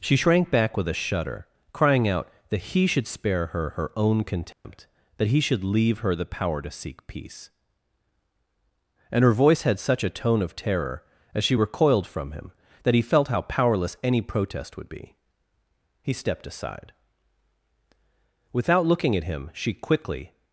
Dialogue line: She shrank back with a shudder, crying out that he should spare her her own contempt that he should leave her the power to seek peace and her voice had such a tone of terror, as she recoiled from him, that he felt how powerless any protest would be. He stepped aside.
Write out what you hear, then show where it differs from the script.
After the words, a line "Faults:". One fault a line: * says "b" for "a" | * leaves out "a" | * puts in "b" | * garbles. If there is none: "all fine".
She shrank back with a shudder, crying out that he should spare her her own contempt that he should leave her the power to seek peace and her voice had such a tone of terror, as she recoiled from him, that he felt how powerless any protest would be. He stepped aside. Without looking at him she quickly
Faults:
* puts in "Without looking at him she quickly"